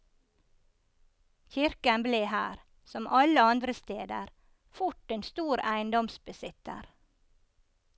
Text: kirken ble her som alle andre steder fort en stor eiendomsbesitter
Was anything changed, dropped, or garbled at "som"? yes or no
no